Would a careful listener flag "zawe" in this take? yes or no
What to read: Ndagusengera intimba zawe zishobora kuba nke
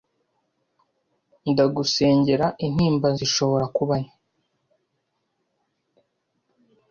yes